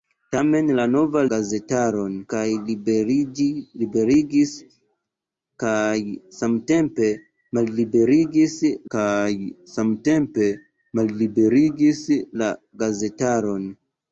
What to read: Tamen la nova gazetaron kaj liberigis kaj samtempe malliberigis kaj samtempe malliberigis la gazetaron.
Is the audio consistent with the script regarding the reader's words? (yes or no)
yes